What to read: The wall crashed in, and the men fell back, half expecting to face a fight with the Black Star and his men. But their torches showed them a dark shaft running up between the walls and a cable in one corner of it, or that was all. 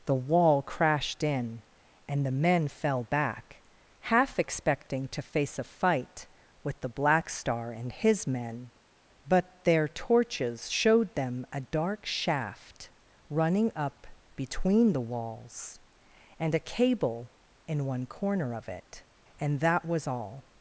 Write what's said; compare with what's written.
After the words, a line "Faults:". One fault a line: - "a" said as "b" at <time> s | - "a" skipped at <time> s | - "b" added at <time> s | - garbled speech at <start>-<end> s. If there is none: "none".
The wall crashed in, and the men fell back, half expecting to face a fight with the Black Star and his men. But their torches showed them a dark shaft running up between the walls and a cable in one corner of it, and that was all.
Faults:
- "or" said as "and" at 19.4 s